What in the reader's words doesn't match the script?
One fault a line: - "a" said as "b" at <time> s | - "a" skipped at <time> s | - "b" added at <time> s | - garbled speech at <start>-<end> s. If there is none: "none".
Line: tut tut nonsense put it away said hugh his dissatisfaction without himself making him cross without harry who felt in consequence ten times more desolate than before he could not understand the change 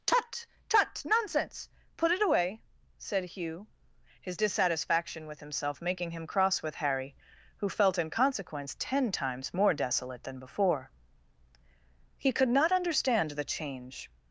- "without" said as "with" at 5.2 s
- "without" said as "with" at 6.6 s